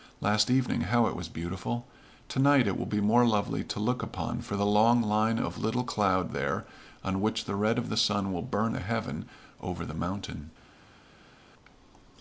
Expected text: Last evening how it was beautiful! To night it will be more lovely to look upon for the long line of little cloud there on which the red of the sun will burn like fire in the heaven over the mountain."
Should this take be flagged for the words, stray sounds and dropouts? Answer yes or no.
yes